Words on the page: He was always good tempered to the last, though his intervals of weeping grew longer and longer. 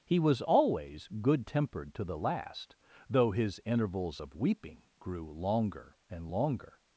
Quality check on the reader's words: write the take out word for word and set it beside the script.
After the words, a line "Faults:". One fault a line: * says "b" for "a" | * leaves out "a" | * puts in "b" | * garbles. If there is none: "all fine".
He was always good tempered to the last, though his intervals of weeping grew longer and longer.
Faults:
all fine